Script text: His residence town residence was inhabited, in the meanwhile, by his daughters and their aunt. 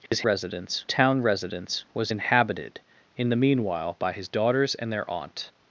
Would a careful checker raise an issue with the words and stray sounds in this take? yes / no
yes